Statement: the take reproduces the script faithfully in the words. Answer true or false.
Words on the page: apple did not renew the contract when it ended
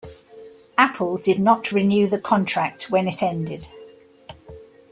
true